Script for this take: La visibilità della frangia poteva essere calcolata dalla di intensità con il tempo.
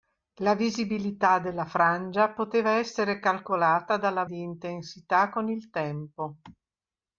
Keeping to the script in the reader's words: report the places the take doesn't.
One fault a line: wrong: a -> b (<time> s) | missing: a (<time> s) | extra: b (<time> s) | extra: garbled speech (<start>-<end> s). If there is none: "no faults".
no faults